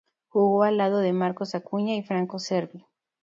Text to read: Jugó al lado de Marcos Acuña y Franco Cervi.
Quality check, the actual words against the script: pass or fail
pass